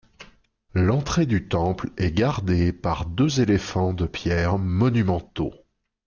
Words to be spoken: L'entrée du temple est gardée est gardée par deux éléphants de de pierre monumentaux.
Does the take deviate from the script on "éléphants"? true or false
false